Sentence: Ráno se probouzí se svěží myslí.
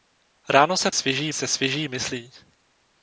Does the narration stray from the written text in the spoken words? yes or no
yes